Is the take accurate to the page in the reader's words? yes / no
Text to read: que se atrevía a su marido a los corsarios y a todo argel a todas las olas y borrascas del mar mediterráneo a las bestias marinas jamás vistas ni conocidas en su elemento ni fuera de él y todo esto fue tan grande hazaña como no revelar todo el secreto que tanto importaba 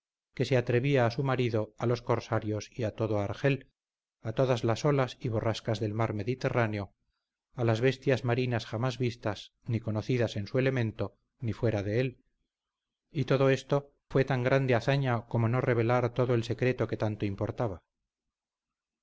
yes